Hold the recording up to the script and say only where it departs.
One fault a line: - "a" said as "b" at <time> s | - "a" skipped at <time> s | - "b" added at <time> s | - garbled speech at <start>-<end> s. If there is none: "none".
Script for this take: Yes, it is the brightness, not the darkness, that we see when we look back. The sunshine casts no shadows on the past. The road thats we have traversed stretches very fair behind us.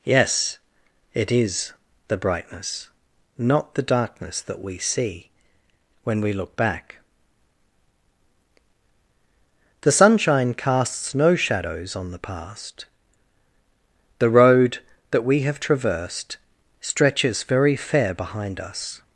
- "thats" said as "that" at 15.1 s